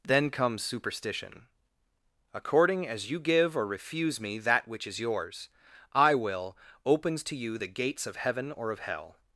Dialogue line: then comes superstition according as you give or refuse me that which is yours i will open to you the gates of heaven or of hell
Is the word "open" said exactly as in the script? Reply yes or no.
no